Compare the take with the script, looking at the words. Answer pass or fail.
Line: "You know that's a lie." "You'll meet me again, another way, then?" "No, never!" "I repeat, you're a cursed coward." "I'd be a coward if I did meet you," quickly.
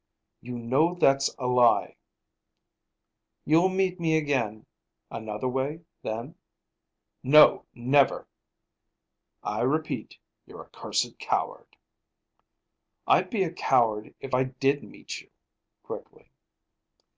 pass